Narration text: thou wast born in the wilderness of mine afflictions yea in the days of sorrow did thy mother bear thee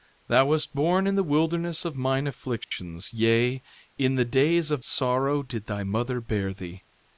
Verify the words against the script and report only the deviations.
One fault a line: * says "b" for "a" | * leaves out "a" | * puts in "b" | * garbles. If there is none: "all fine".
all fine